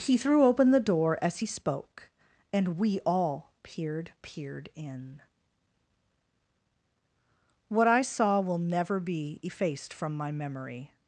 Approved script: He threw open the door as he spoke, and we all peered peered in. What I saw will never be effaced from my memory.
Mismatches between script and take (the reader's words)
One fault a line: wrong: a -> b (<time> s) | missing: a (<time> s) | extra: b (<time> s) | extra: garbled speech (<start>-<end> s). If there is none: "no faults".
no faults